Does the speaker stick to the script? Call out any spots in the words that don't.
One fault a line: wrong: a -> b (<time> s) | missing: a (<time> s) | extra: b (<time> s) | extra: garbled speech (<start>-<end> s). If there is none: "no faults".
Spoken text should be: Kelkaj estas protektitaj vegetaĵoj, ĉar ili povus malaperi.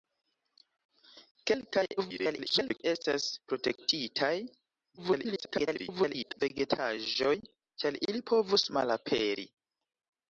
extra: garbled speech (2.0-2.8 s)
extra: garbled speech (5.0-6.4 s)